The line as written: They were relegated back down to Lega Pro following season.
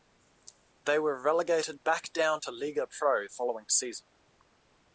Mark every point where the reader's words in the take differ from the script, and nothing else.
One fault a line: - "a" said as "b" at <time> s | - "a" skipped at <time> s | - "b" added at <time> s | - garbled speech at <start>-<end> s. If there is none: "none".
none